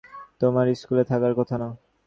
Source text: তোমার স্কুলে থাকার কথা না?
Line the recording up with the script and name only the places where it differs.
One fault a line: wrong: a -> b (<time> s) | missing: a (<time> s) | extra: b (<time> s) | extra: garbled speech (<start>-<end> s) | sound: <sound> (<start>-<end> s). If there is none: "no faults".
no faults